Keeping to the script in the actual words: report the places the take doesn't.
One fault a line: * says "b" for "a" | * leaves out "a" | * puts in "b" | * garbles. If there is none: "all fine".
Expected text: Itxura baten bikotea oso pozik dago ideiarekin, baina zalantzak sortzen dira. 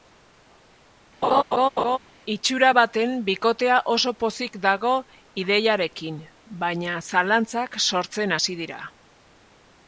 * puts in "hasi"